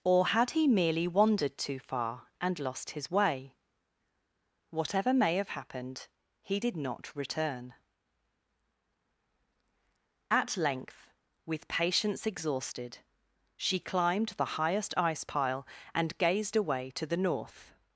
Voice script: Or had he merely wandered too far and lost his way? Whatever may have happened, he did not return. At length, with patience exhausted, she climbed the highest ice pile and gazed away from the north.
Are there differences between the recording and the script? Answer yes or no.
yes